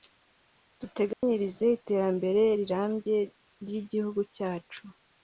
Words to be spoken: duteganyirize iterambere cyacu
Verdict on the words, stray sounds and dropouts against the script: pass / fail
fail